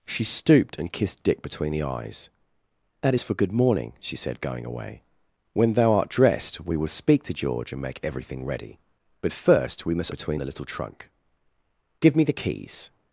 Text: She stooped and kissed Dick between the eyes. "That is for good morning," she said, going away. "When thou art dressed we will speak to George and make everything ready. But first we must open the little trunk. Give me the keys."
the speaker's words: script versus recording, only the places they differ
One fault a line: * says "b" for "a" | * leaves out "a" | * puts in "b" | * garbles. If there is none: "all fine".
* says "between" for "open"